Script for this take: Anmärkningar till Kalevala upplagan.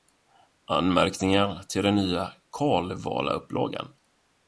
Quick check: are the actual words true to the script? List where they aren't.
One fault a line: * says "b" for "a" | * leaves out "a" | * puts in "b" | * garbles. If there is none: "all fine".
* puts in "den nya"